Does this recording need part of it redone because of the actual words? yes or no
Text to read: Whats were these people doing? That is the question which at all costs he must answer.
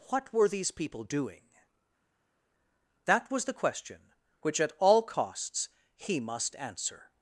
yes